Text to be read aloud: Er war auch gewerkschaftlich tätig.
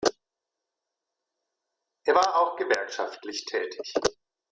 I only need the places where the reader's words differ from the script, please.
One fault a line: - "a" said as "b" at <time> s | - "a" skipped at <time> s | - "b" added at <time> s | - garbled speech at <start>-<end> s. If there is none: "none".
none